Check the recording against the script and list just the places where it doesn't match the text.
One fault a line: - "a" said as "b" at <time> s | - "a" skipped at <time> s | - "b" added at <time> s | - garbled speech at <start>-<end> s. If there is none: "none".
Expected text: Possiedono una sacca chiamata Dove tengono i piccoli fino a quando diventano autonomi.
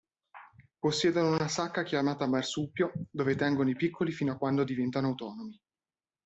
- "Marsupio" added at 2.2 s